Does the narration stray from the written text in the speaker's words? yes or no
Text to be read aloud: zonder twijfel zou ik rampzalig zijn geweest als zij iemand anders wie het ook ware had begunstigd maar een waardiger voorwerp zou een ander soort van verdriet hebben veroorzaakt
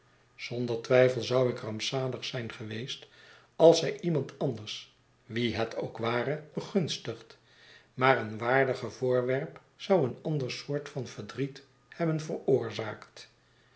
yes